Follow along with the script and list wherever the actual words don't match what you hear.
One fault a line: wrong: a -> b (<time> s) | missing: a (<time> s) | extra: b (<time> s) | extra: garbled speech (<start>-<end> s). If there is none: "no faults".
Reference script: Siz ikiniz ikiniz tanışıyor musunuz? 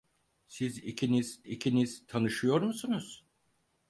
no faults